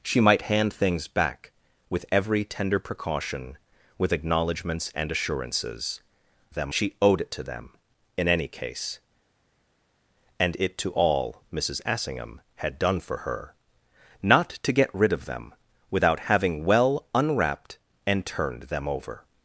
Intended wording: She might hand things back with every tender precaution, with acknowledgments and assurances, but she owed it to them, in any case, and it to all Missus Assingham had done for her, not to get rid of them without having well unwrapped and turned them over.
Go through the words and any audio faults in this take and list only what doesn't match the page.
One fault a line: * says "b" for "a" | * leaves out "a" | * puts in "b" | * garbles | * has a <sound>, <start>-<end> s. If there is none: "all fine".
* says "them" for "but"